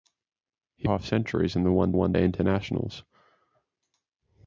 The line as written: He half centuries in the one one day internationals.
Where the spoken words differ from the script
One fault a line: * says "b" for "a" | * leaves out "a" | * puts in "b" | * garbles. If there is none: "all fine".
all fine